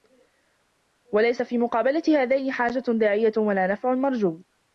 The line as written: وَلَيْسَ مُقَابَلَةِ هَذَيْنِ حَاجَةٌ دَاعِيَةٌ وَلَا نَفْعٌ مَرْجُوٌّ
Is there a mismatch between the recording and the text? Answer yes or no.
yes